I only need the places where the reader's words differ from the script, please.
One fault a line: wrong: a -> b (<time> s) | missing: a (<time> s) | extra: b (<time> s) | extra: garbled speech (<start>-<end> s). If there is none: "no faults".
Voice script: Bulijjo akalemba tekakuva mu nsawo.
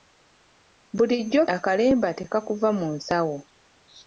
no faults